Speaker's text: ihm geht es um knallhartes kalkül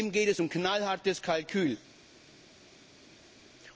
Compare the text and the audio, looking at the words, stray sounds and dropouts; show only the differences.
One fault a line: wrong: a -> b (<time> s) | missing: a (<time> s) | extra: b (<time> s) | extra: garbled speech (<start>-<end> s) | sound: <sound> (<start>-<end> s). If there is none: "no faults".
no faults